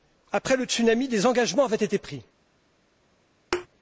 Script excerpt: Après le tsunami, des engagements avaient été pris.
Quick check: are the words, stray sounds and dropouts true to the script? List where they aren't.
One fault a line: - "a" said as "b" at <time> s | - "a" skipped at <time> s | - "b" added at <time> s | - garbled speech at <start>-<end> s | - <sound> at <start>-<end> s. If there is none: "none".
- thud at 3.5-3.7 s